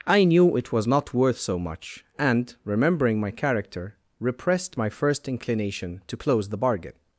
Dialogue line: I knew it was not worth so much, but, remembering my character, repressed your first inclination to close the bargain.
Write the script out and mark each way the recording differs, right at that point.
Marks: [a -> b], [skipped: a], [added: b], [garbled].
I knew it was not worth so much, [but, -> and] remembering my character, repressed [your -> my] first inclination to close the bargain.